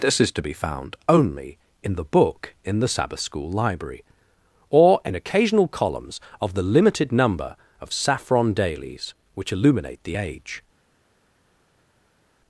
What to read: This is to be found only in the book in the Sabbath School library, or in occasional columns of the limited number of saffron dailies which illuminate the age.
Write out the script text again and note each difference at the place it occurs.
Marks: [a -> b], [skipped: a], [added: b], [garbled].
This is to be found only in the book in the Sabbath School library, or in occasional columns of the limited number of saffron dailies which illuminate the age.